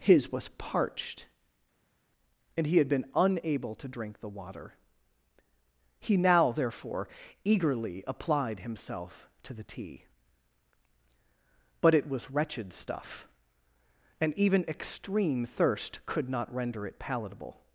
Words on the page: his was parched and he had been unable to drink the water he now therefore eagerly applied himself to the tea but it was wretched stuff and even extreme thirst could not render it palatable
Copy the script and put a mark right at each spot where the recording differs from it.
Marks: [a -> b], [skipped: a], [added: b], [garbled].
his was parched and he had been unable to drink the water he now therefore eagerly applied himself to the tea but it was wretched stuff and even extreme thirst could not render it palatable